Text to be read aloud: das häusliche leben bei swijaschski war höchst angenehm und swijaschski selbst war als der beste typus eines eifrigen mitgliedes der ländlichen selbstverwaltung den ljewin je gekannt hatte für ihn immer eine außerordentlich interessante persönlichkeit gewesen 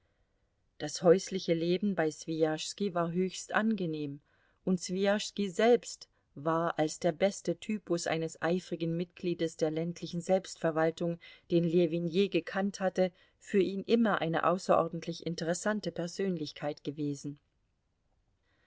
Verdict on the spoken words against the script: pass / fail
pass